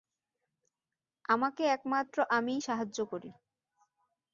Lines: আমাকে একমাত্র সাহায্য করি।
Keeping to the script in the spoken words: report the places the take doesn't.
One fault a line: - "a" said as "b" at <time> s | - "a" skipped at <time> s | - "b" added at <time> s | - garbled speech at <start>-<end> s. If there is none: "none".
- "আমিই" added at 2.4 s